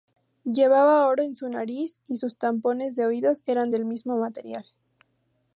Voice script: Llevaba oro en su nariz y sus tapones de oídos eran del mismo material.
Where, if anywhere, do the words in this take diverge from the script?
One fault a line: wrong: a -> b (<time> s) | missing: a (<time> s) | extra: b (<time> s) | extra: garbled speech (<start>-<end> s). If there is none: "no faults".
no faults